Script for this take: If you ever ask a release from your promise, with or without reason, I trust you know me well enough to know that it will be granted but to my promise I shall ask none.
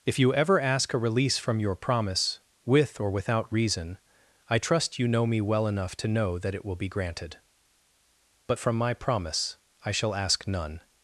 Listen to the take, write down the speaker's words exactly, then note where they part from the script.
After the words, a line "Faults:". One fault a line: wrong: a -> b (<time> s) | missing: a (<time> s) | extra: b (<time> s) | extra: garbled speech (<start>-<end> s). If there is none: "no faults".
If you ever ask a release from your promise, with or without reason, I trust you know me well enough to know that it will be granted but from my promise I shall ask none.
Faults:
wrong: to -> from (8.6 s)